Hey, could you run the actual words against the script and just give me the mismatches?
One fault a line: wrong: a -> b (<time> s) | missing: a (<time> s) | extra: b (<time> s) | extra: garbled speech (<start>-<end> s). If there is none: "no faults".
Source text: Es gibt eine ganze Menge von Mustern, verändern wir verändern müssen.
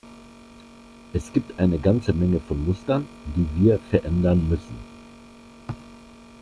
wrong: verändern -> die (3.4 s)